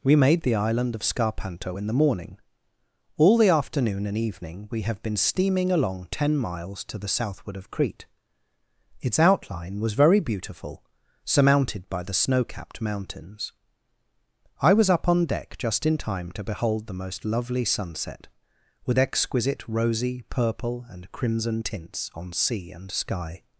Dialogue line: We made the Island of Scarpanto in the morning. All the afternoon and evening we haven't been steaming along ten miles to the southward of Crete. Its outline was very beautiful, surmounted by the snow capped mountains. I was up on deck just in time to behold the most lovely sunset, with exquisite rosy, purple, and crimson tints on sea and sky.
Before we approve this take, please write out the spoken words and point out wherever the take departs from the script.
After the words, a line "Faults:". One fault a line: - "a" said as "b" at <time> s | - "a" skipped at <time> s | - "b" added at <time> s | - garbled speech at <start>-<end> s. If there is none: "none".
We made the Island of Scarpanto in the morning. All the afternoon and evening we have been steaming along ten miles to the southward of Crete. Its outline was very beautiful, surmounted by the snow capped mountains. I was up on deck just in time to behold the most lovely sunset, with exquisite rosy, purple, and crimson tints on sea and sky.
Faults:
- "haven't" said as "have" at 4.8 s